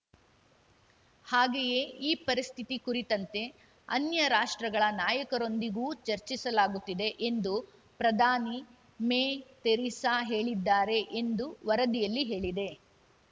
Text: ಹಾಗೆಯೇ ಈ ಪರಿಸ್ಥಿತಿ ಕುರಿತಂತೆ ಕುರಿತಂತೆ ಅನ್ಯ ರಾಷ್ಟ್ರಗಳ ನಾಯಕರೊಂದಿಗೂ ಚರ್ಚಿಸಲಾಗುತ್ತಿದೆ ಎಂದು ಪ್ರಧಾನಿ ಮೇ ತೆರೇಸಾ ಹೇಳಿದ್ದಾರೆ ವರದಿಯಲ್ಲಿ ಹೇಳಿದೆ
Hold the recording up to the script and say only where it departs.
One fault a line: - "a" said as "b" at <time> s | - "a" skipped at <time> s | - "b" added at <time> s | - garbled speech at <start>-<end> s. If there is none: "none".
- "ಕುರಿತಂತೆ" skipped at 3.4 s
- "ಎಂದು" added at 11.2 s